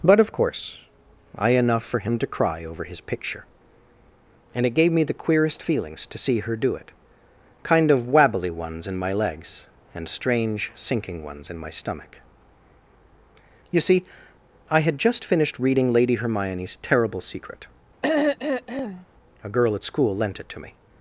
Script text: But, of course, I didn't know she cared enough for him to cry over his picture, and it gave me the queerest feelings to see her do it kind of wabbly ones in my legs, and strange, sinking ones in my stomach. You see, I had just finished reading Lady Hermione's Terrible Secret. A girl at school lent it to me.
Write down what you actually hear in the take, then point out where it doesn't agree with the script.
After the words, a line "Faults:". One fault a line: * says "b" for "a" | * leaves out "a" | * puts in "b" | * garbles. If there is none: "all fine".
But, of course, I enough for him to cry over his picture, and it gave me the queerest feelings to see her do it kind of wabbly ones in my legs, and strange, sinking ones in my stomach. You see, I had just finished reading Lady Hermione's Terrible Secret. A girl at school lent it to me.
Faults:
* leaves out "didn't know she cared"